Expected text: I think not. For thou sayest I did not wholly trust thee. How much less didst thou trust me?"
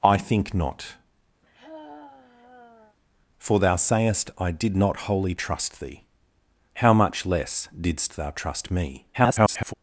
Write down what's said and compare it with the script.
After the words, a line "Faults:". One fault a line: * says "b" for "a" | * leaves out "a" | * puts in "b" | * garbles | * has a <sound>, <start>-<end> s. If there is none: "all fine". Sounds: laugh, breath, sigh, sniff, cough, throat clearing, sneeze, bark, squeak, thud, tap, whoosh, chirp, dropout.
I think not. For thou sayest I did not wholly trust thee. How much less didst thou trust me?" [garbled]
Faults:
* has a sigh, 1.4-3.0 s
* garbles